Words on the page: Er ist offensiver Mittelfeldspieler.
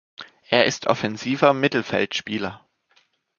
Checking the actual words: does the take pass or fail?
pass